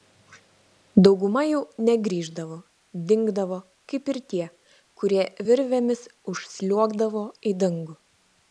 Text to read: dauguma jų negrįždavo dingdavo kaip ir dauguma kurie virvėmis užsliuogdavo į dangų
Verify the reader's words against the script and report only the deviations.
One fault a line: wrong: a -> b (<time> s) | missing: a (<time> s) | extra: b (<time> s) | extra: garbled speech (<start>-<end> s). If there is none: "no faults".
wrong: dauguma -> tie (4.3 s)